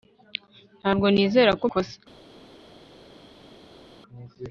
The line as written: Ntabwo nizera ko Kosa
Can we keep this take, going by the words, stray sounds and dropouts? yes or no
yes